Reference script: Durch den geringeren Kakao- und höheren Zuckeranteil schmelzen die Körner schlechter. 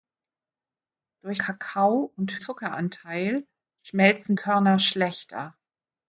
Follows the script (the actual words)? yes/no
no